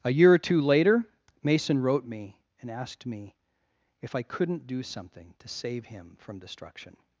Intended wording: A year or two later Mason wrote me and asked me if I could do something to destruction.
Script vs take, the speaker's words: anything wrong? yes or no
yes